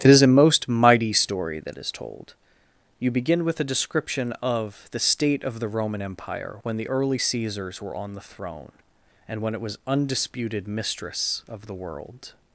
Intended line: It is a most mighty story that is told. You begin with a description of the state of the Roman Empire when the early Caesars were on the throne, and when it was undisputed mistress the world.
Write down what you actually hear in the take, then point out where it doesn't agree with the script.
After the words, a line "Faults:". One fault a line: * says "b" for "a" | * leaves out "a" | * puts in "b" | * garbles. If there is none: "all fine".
It is a most mighty story that is told. You begin with a description of the state of the Roman Empire when the early Caesars were on the throne, and when it was undisputed mistress of the world.
Faults:
* puts in "of"